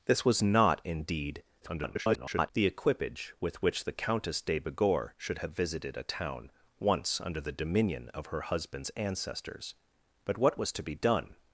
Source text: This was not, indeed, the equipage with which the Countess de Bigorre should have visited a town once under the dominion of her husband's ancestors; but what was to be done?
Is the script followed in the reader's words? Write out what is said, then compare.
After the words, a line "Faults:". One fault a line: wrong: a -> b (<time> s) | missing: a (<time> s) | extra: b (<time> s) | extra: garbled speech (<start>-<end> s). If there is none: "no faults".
This was not, indeed, [garbled] the equipage with which the Countess de Bigorre should have visited a town once under the dominion of her husband's ancestors; but what was to be done?
Faults:
extra: garbled speech (1.6-2.5 s)